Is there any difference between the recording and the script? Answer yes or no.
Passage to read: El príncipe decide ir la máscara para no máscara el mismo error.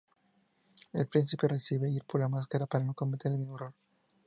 yes